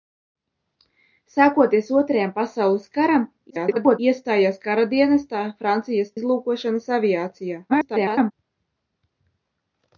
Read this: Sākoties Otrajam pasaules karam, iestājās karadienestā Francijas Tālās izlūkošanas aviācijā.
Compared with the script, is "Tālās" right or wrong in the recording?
wrong